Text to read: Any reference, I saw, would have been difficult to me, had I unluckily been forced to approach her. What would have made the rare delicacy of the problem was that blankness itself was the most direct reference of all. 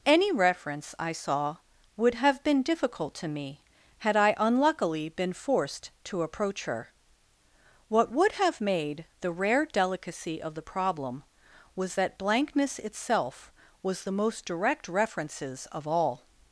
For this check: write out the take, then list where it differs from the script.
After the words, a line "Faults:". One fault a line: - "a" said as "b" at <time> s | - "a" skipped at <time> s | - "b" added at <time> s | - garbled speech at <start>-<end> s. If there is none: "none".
Any reference, I saw, would have been difficult to me, had I unluckily been forced to approach her. What would have made the rare delicacy of the problem was that blankness itself was the most direct references of all.
Faults:
- "reference" said as "references" at 14.9 s